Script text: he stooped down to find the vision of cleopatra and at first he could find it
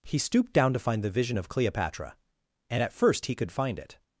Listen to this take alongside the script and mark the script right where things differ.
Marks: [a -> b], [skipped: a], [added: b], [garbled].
he stooped down to find the vision of cleopatra and at first he could find it